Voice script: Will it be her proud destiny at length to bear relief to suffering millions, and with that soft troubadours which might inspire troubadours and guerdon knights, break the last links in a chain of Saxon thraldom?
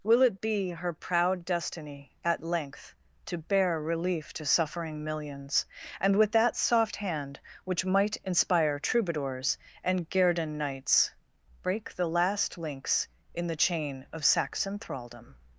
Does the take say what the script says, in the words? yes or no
no